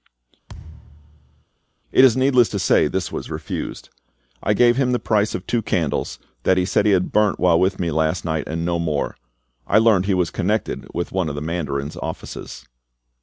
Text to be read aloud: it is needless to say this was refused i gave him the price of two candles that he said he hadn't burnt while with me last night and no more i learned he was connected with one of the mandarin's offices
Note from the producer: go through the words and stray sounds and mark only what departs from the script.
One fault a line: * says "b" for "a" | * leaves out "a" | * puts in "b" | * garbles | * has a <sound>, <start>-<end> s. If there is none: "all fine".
* has a thud, 0.5-1.4 s
* says "had" for "hadn't"